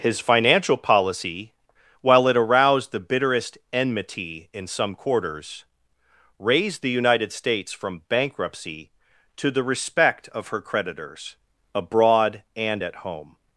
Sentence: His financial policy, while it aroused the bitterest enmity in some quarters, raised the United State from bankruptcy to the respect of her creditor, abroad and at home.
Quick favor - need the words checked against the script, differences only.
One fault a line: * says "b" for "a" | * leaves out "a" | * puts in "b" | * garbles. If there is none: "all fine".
* says "States" for "State"
* says "creditors" for "creditor"